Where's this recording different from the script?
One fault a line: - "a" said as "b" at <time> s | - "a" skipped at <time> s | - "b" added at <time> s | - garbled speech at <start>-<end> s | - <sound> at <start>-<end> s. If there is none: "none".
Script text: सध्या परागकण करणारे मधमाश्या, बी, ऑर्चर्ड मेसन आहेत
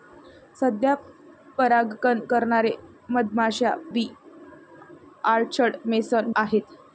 none